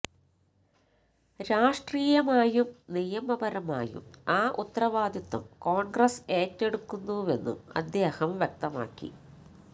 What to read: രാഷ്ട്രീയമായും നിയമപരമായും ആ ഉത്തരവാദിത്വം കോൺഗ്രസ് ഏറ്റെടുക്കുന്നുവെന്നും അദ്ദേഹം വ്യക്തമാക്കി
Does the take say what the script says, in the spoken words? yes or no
yes